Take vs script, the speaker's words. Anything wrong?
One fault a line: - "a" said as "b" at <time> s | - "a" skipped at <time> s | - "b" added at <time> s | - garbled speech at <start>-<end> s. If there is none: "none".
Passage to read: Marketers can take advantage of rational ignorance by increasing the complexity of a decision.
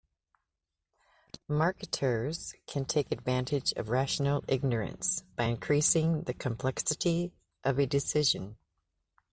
none